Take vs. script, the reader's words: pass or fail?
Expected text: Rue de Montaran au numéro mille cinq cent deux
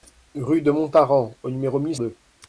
fail